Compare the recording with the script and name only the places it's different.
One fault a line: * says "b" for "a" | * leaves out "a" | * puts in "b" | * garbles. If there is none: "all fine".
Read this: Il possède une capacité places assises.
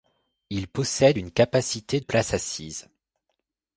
all fine